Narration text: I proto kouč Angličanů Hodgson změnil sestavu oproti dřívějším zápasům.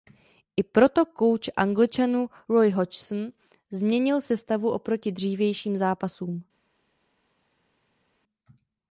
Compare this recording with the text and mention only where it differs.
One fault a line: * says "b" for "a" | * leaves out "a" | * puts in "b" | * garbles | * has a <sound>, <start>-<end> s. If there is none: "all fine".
* puts in "Roy"